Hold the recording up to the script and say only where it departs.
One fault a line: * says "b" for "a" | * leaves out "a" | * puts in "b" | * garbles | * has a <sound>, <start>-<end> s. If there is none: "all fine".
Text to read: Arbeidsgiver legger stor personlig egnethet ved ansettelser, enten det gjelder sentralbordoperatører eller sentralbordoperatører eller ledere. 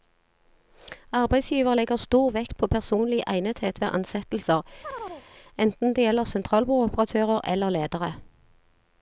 * puts in "vekt på"
* has a chirp, 4.8-5.3 s
* leaves out "sentralbordoperatører eller"